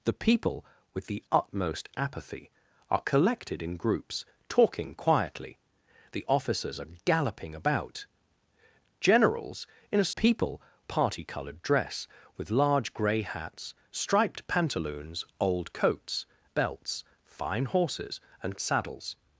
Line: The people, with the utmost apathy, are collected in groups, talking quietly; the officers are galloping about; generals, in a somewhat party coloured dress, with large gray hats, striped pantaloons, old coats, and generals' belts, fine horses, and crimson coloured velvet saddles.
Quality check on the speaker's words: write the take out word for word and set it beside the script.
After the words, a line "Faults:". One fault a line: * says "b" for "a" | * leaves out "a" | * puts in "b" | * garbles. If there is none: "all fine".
The people, with the utmost apathy, are collected in groups, talking quietly; the officers are galloping about; generals, in a people party coloured dress, with large gray hats, striped pantaloons, old coats' belts, fine horses, and saddles.
Faults:
* says "people" for "somewhat"
* leaves out "and generals"
* leaves out "crimson coloured velvet"